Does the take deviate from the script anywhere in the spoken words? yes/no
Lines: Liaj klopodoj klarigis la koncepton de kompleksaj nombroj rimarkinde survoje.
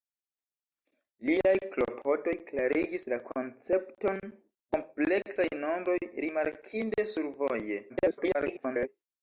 yes